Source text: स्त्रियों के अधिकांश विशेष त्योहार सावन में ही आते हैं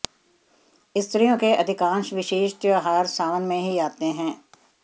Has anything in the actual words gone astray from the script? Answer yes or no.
no